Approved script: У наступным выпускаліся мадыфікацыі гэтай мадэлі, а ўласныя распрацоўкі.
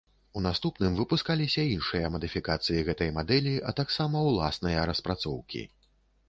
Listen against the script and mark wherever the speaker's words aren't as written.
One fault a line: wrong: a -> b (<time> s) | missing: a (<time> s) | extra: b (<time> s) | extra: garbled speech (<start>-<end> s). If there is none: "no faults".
extra: іншыя (1.7 s)
extra: таксама (3.8 s)